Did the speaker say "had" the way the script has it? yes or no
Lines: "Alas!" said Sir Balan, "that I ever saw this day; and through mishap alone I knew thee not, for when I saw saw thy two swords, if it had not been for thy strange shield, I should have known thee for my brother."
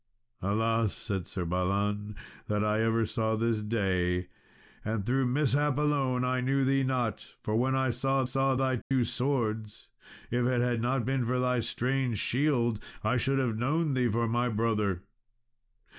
yes